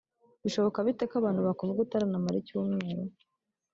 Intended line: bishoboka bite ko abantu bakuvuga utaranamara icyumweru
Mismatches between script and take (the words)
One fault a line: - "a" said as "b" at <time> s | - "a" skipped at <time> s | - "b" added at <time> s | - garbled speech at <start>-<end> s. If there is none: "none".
none